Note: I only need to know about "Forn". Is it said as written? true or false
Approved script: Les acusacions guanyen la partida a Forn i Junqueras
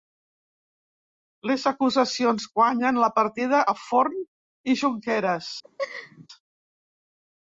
true